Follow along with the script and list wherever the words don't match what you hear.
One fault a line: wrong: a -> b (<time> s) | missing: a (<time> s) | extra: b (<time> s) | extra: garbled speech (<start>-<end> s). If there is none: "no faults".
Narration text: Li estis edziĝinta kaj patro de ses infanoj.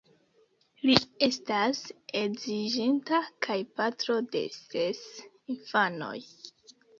wrong: estis -> estas (1.2 s)